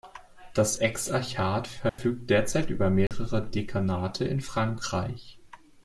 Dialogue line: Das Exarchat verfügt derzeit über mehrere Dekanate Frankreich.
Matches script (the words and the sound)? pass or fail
fail